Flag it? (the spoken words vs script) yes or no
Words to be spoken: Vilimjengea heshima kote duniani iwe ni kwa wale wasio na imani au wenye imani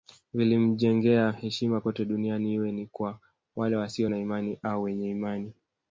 no